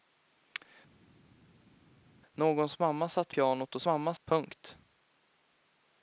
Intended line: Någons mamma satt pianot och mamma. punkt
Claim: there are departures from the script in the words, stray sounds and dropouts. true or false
false